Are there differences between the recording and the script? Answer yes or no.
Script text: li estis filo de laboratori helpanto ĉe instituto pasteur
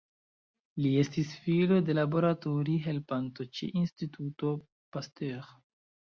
no